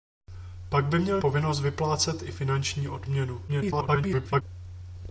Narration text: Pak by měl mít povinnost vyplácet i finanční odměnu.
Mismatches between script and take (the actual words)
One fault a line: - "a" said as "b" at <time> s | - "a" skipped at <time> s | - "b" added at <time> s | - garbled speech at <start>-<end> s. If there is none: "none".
- "mít" skipped at 1.2 s
- garbled speech at 3.5-4.4 s